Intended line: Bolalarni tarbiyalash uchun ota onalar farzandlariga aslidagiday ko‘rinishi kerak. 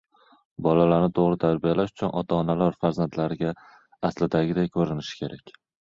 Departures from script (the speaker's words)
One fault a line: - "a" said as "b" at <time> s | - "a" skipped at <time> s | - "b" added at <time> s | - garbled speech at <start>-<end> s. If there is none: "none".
- "to‘g‘ri" added at 1.2 s